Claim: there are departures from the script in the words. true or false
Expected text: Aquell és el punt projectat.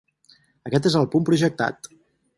true